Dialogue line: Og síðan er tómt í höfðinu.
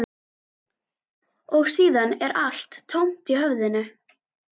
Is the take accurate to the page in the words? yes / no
no